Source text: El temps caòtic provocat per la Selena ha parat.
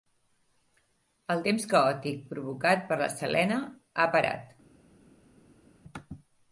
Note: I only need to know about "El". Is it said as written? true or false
true